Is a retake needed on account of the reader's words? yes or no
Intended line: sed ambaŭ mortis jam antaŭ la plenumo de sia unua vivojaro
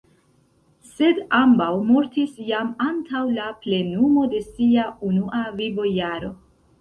no